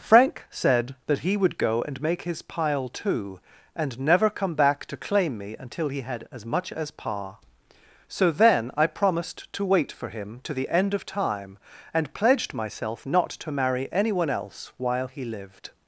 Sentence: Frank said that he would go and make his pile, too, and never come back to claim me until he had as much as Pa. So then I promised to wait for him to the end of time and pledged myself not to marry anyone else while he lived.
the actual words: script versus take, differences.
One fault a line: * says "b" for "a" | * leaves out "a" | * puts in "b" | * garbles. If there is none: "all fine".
all fine